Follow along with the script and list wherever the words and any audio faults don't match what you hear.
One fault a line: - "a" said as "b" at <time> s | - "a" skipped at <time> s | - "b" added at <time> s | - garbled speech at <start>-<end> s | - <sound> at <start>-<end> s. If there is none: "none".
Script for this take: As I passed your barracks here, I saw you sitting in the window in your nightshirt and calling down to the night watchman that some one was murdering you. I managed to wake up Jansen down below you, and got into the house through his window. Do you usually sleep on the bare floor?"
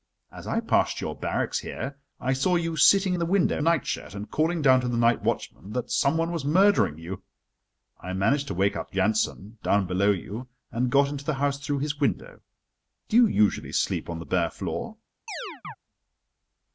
- "in" skipped at 3.1 s
- "in your" skipped at 3.6 s
- chirp at 15.3-15.8 s